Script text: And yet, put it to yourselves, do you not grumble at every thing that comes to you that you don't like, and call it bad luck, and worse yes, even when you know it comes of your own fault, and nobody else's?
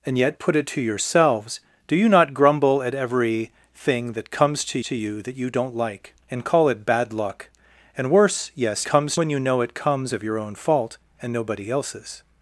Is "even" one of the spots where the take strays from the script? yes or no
yes